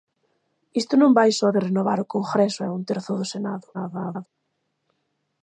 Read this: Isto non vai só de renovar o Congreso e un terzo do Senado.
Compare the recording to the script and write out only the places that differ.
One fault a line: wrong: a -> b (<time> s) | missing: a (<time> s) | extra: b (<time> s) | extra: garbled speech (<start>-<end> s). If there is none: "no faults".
extra: garbled speech (3.7-4.3 s)